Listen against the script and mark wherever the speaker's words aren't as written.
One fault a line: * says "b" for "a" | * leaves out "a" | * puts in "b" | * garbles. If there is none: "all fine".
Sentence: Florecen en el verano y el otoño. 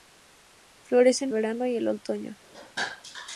* leaves out "en el"